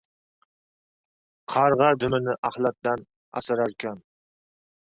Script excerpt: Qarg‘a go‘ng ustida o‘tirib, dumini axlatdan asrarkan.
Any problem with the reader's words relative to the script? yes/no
yes